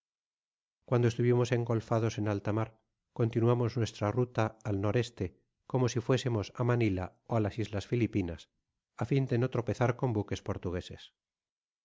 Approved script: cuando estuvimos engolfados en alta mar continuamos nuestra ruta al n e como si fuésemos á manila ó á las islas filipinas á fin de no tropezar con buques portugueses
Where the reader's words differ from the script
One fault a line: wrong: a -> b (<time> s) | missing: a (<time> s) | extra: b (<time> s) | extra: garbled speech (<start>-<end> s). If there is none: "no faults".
no faults